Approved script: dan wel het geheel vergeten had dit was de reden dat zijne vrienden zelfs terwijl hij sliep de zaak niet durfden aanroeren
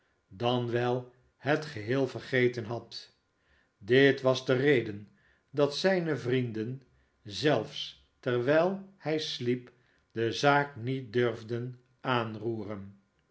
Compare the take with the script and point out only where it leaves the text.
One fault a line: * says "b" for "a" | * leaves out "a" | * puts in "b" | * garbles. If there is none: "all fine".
all fine